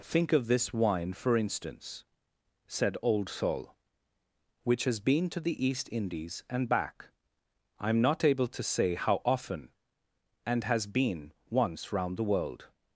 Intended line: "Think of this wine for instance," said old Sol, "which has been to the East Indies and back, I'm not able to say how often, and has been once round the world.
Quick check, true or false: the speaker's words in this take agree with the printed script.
true